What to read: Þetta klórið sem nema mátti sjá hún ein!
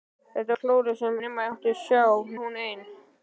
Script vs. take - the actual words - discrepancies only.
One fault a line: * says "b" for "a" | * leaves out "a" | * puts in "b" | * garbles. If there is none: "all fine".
all fine